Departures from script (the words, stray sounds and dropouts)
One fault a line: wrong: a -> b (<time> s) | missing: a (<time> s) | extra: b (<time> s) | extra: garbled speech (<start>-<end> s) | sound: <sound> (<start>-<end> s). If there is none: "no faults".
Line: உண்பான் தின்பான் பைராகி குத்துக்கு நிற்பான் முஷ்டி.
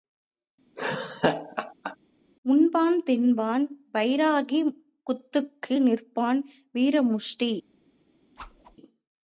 sound: laugh (0.8-2.0 s)
extra: வீர (6.7 s)
sound: whoosh (8.4-8.8 s)